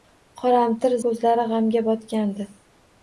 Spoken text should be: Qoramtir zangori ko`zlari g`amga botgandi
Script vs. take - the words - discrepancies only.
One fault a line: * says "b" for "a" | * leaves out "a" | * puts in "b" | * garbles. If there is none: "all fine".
* leaves out "zangori"